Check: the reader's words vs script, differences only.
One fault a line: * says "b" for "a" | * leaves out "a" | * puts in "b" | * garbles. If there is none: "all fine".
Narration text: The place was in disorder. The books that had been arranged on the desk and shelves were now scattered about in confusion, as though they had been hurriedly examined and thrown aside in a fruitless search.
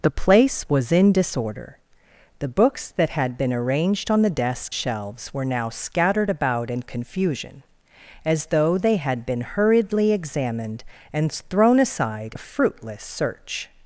* leaves out "and"
* leaves out "in"